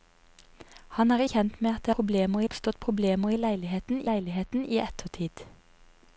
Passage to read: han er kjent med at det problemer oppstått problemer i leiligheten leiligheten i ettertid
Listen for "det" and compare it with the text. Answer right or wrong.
right